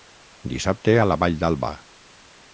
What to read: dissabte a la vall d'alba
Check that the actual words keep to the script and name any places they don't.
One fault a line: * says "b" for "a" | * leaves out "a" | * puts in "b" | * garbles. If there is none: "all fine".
all fine